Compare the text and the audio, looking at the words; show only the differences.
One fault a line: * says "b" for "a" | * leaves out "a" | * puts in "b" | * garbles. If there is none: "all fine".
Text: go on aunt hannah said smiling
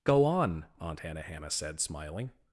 * puts in "hannah"